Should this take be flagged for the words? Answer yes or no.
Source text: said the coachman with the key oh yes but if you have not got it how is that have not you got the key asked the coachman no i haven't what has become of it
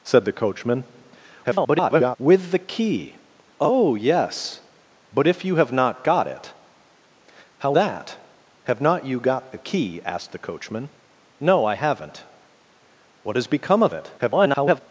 yes